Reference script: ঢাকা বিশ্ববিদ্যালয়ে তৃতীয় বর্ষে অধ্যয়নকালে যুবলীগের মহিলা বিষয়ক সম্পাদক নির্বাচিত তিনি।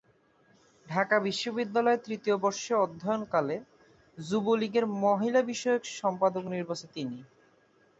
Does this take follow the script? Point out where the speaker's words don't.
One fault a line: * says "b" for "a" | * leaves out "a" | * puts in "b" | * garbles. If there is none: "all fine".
all fine